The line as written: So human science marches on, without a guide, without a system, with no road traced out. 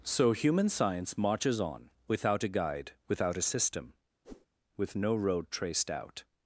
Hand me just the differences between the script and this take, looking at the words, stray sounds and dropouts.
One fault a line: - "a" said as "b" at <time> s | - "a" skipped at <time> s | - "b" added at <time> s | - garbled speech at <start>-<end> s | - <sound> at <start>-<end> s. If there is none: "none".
- whoosh at 4.2-4.5 s